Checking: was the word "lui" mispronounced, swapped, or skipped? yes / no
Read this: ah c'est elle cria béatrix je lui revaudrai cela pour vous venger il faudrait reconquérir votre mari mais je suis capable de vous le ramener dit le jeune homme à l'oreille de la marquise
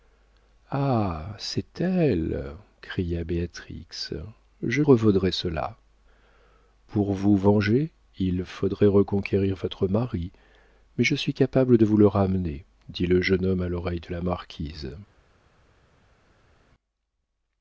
yes